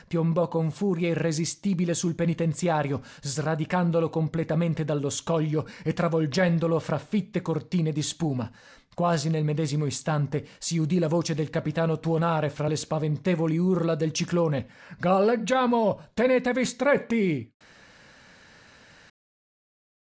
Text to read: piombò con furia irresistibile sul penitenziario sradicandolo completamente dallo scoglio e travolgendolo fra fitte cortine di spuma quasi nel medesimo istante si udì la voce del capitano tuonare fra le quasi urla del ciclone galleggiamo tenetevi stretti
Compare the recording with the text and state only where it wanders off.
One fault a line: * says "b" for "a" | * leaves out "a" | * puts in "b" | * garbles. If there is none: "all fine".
* says "spaventevoli" for "quasi"